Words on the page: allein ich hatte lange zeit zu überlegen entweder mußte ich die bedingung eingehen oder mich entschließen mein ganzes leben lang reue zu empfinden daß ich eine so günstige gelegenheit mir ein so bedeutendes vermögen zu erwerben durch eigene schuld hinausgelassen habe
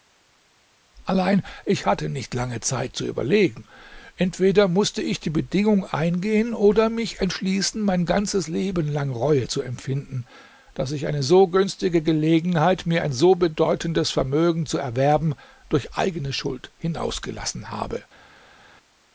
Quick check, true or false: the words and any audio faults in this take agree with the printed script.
false